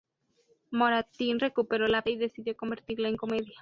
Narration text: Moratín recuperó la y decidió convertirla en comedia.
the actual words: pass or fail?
pass